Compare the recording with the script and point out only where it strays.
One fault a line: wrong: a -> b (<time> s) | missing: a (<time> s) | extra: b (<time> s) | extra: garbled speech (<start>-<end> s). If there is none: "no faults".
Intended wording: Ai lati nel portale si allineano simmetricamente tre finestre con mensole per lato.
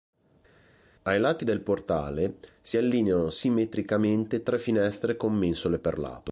wrong: nel -> del (1.4 s)